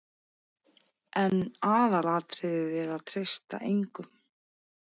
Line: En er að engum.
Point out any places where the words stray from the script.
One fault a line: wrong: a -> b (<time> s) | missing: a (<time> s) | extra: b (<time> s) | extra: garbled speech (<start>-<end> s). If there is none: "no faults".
extra: aðalatriðið (1.7 s)
extra: treysta (3.1 s)